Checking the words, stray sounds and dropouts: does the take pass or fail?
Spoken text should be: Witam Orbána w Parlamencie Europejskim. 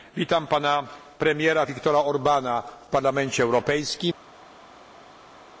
fail